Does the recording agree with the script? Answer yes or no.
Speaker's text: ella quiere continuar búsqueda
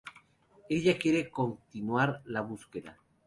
no